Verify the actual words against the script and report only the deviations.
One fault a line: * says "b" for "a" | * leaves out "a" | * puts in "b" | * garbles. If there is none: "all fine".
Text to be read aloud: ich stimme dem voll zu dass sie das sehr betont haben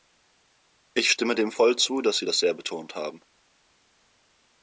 all fine